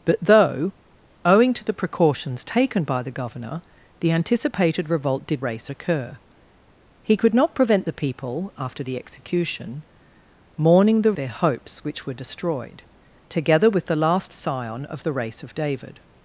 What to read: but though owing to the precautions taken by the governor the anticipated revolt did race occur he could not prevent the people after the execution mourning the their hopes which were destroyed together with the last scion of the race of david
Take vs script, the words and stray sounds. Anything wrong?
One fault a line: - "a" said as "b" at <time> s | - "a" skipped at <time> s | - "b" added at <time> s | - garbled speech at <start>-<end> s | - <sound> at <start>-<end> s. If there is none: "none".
none